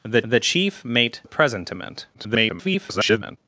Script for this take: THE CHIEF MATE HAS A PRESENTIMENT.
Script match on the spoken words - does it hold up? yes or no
no